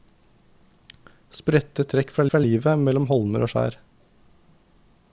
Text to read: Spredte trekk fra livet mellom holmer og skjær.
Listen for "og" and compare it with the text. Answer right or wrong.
right